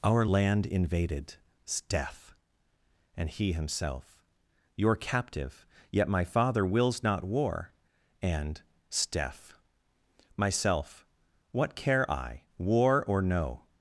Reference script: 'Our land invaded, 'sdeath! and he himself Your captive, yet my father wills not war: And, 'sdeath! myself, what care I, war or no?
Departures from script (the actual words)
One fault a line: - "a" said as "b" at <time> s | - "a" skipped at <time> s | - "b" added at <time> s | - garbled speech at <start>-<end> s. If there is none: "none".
none